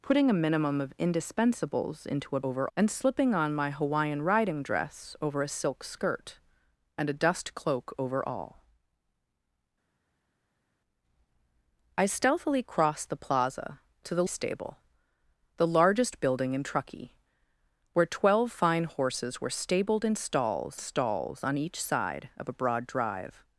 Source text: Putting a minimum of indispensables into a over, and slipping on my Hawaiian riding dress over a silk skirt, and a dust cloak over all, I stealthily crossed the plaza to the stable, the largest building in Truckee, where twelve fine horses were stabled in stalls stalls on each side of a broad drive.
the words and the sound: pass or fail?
pass